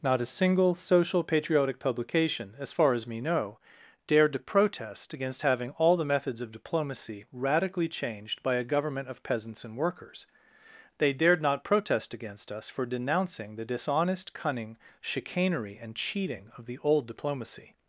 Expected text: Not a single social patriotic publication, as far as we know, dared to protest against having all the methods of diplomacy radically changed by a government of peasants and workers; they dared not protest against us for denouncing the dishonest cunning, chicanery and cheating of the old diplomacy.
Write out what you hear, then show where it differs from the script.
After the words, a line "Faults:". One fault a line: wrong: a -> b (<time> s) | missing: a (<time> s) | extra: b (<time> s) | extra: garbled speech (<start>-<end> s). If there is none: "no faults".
Not a single social patriotic publication, as far as me know, dared to protest against having all the methods of diplomacy radically changed by a government of peasants and workers; they dared not protest against us for denouncing the dishonest cunning, chicanery and cheating of the old diplomacy.
Faults:
wrong: we -> me (3.0 s)